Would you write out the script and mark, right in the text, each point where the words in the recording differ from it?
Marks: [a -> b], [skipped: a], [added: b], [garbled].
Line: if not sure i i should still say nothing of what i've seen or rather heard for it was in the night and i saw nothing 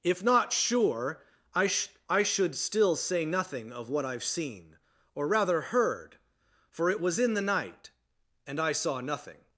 if not sure i [added: sh] i should still say nothing of what i've seen or rather heard for it was in the night and i saw nothing